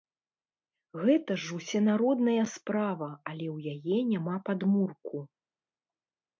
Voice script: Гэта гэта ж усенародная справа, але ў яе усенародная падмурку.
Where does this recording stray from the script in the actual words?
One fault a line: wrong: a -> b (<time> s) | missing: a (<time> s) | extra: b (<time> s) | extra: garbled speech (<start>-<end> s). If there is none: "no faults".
missing: гэта (1.3 s)
wrong: усенародная -> няма (4.2 s)